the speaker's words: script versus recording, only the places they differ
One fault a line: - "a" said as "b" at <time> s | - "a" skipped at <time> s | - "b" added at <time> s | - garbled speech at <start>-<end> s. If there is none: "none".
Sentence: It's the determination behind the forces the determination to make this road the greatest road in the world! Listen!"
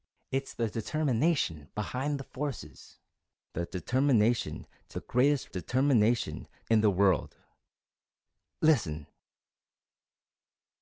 - "make this road" skipped at 5.0 s
- "road" said as "determination" at 5.5 s